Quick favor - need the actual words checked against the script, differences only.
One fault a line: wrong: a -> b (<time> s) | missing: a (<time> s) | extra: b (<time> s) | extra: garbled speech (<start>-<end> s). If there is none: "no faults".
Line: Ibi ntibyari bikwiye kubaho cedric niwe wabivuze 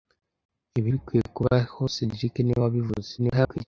missing: ntibyari (0.9 s)
extra: garbled speech (3.2-3.7 s)